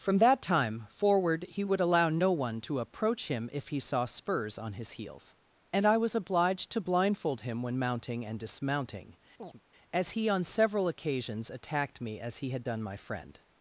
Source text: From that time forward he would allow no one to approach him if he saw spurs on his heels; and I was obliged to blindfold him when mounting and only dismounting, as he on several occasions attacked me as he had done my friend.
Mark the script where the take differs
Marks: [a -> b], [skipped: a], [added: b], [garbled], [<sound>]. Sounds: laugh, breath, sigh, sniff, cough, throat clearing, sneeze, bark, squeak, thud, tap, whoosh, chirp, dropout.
From that time forward he would allow no one to approach him if he saw spurs on his heels; and I was obliged to blindfold him when mounting and [skipped: only] dismounting, [chirp] as he on several occasions attacked me as he had done my friend.